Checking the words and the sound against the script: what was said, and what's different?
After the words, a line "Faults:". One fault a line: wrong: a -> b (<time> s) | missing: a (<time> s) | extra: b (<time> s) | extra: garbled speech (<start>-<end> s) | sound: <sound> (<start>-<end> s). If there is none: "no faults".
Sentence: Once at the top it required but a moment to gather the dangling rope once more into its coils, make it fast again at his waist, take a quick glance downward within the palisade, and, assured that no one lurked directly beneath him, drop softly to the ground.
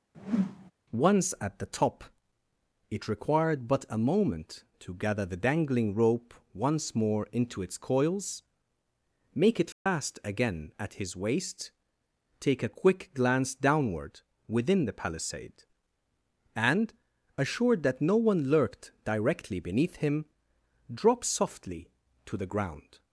Once at the top it required but a moment to gather the dangling rope once more into its coils, make it fast again at his waist, take a quick glance downward within the palisade, and, assured that no one lurked directly beneath him, drop softly to the ground.
Faults:
sound: whoosh (0.1-0.7 s)
sound: dropout (9.7-9.9 s)